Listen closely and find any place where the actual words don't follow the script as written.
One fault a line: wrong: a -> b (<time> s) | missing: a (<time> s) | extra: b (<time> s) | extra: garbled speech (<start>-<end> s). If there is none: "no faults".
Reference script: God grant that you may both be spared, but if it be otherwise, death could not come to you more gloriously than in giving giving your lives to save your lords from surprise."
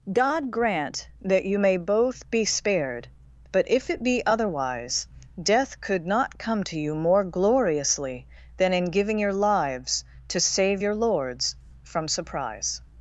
missing: giving (9.2 s)